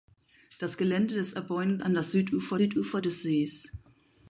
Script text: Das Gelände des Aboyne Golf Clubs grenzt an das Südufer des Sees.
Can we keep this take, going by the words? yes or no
no